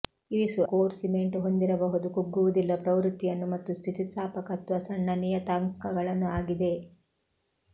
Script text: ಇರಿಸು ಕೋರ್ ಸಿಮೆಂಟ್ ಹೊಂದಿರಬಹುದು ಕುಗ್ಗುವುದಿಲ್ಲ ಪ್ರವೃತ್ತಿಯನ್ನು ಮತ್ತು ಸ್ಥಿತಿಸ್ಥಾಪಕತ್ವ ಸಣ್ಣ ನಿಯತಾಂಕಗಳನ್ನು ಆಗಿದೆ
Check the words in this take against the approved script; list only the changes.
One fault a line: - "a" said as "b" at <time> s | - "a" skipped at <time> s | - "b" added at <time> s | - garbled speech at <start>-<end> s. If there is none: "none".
none